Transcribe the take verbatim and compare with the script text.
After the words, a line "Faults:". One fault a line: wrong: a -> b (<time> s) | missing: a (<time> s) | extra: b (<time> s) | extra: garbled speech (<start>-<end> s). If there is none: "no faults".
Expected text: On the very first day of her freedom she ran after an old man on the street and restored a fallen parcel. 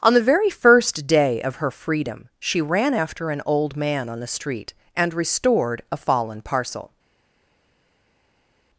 On the very first day of her freedom she ran after an old man on the street and restored a fallen parcel.
Faults:
no faults